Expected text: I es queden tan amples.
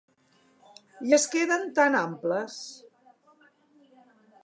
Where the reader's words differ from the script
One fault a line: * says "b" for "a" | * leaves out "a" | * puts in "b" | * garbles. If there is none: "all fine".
all fine